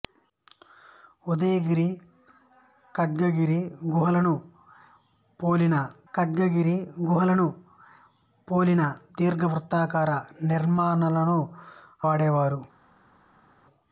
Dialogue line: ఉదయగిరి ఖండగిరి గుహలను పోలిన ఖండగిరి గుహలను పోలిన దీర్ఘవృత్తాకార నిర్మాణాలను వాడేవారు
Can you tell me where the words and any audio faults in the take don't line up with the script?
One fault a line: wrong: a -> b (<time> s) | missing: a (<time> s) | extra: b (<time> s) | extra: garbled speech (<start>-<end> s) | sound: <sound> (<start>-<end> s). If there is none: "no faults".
no faults